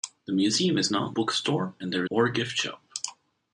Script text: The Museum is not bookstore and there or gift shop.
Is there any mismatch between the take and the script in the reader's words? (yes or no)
no